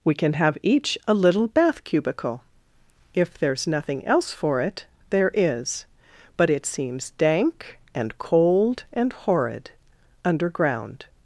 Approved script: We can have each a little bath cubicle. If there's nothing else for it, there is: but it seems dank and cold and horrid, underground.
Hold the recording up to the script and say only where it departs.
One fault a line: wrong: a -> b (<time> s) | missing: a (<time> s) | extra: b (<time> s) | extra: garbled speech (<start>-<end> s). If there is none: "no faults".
no faults